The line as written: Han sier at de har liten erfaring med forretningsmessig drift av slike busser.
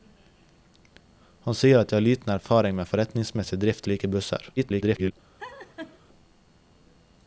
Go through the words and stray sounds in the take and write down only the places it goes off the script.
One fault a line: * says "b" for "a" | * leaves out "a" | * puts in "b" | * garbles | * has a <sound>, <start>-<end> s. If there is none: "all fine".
* leaves out "av"
* garbles
* has a laugh, 5.4-6.0 s